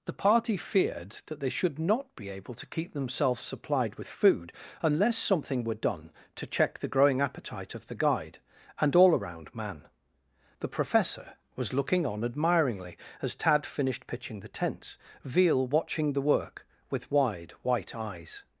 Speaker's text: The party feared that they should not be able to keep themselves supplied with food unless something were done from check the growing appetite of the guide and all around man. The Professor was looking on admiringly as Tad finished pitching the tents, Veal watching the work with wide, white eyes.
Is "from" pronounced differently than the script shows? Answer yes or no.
yes